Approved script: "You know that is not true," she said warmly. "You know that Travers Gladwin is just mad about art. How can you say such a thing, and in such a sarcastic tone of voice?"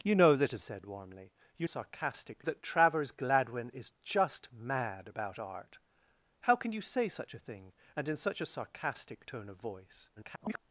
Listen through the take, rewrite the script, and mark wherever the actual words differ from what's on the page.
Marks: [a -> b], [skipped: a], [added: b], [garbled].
"You know that is [skipped: not true," she] said warmly. "You [know -> sarcastic] that Travers Gladwin is just mad about art. How can you say such a thing, and in such a sarcastic tone of voice?" [garbled]